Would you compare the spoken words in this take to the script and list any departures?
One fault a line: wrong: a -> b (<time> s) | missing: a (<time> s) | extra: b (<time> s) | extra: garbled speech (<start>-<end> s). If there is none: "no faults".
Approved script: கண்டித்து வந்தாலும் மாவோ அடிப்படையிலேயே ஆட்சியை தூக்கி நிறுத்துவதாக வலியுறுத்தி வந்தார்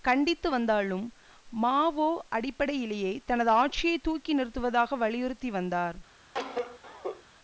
extra: தனது (3.2 s)